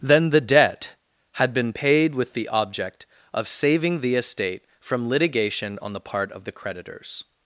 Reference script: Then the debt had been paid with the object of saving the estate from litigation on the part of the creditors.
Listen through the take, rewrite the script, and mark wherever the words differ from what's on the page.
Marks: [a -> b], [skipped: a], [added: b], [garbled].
Then the debt had been paid with the object of saving the estate from litigation on the part of the creditors.